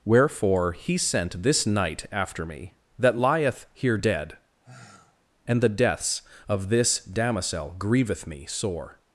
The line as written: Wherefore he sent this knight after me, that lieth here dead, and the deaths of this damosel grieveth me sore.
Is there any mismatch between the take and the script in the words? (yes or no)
no